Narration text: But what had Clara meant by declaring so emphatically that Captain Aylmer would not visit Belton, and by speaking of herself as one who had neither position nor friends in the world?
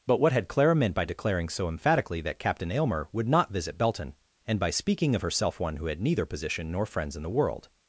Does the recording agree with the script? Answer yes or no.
no